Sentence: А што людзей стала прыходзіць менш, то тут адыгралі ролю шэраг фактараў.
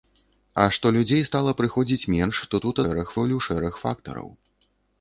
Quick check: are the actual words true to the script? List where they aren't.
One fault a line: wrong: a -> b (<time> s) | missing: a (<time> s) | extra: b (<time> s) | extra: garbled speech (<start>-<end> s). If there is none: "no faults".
wrong: адыгралі -> шэраг (2.8 s)